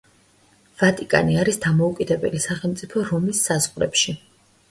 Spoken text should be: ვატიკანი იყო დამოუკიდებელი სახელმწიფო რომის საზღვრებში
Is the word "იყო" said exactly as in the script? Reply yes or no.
no